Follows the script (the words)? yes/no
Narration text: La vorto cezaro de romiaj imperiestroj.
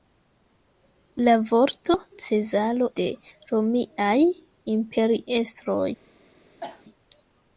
yes